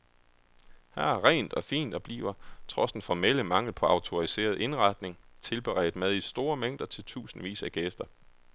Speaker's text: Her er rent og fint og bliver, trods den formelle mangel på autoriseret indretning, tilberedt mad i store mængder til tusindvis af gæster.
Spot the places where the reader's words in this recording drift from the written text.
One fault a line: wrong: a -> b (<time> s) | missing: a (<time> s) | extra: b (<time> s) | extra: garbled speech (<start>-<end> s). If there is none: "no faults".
no faults